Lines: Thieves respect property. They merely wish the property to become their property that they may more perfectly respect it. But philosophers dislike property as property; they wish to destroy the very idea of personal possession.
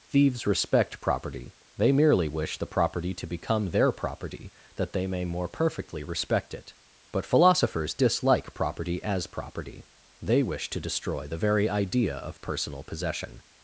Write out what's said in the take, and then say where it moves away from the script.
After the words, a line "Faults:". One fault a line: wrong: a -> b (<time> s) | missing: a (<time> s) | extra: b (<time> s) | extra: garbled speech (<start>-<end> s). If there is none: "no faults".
Thieves respect property. They merely wish the property to become their property that they may more perfectly respect it. But philosophers dislike property as property; they wish to destroy the very idea of personal possession.
Faults:
no faults